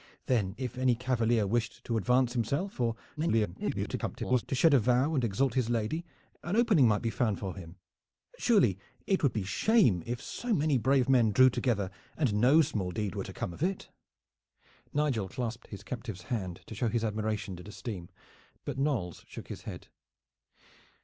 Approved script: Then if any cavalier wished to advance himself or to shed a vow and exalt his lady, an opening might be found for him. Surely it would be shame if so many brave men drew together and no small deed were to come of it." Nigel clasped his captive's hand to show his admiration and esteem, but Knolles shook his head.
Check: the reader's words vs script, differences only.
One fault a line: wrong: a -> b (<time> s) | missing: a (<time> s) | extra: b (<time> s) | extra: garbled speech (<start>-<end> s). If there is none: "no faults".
extra: garbled speech (3.2-4.4 s)